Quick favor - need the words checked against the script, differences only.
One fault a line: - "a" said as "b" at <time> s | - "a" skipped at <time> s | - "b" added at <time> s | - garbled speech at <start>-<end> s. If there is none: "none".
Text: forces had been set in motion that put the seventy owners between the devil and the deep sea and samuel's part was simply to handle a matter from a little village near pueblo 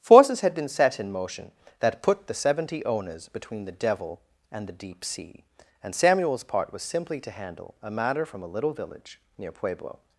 none